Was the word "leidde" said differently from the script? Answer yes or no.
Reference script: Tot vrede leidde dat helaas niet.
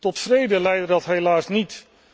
no